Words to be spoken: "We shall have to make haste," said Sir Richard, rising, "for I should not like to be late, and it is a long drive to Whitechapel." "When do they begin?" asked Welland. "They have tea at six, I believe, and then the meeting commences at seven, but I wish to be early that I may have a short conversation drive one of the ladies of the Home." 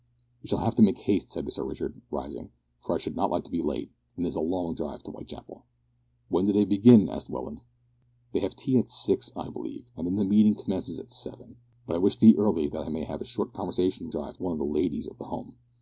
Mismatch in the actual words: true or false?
false